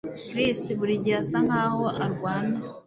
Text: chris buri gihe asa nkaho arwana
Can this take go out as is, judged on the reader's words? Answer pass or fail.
pass